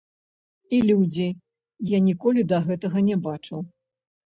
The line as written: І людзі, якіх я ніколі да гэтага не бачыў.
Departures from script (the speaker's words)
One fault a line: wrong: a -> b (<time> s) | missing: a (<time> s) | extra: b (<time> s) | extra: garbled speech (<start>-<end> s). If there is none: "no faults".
missing: якіх (1.2 s)